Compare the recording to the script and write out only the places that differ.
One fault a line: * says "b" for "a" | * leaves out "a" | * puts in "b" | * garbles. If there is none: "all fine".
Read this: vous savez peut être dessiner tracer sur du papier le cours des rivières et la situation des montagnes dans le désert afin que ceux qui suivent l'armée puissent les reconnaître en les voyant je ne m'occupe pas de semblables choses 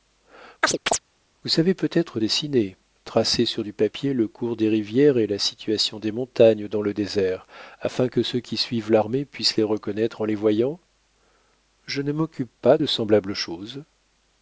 all fine